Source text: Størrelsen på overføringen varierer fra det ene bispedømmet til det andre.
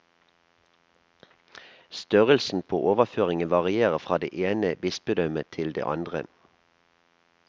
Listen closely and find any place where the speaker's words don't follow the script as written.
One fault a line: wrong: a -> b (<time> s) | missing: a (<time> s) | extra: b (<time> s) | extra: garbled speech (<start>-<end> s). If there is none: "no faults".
no faults